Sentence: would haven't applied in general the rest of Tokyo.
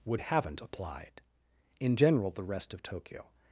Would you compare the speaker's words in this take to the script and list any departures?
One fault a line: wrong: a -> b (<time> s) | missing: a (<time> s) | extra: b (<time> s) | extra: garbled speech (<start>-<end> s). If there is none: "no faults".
no faults